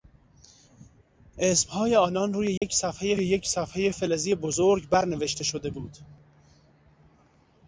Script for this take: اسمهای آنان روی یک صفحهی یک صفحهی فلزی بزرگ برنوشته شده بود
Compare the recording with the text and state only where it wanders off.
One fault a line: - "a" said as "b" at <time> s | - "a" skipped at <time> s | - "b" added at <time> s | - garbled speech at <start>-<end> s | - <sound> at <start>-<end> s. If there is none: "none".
- dropout at 2.6-2.6 s